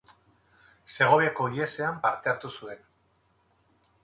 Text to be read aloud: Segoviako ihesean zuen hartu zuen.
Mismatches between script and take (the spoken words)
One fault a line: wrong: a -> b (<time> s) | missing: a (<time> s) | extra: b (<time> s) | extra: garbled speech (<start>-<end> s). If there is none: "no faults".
wrong: zuen -> parte (2.1 s)